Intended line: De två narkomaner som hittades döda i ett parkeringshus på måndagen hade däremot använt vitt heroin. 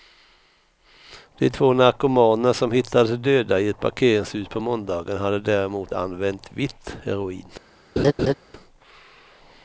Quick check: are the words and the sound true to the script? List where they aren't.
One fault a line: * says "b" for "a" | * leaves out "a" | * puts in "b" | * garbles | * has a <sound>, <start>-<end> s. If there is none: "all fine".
* has a laugh, 8.0-8.3 s